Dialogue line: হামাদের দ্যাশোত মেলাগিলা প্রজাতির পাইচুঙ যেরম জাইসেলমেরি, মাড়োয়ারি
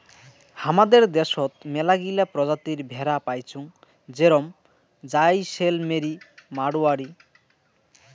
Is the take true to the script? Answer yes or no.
no